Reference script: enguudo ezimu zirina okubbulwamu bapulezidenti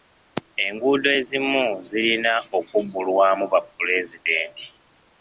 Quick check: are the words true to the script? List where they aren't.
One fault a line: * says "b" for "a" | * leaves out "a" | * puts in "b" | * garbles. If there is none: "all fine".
all fine